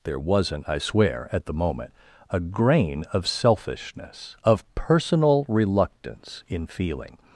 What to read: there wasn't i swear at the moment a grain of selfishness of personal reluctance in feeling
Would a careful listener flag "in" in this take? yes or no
no